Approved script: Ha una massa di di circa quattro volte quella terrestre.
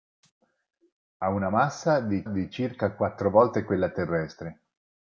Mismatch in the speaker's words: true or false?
false